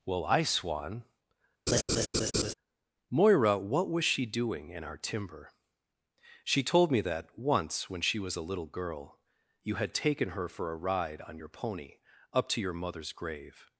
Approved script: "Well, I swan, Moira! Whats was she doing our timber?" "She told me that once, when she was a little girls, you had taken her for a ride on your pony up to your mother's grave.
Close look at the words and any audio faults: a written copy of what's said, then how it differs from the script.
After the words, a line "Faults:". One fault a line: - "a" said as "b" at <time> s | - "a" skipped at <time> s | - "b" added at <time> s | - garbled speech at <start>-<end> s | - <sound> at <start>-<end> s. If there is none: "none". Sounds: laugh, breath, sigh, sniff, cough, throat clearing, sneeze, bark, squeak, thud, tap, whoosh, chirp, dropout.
"Well, I swan, Moira! What was she doing in our timber?" "She told me that once, when she was a little girl, you had taken her for a ride on your pony up to your mother's grave.
Faults:
- laugh at 1.7-2.5 s
- "Whats" said as "What" at 3.6 s
- "in" added at 4.7 s
- "girls" said as "girl" at 8.7 s